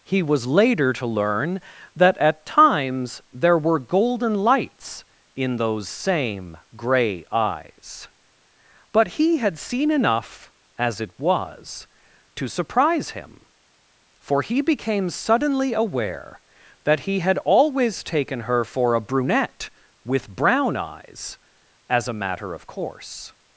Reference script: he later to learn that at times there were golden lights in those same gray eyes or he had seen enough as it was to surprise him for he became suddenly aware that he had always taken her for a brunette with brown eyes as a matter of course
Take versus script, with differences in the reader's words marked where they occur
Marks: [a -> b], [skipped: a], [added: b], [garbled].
he [added: was] later to learn that at times there were golden lights in those same gray eyes [or -> but] he had seen enough as it was to surprise him for he became suddenly aware that he had always taken her for a brunette with brown eyes as a matter of course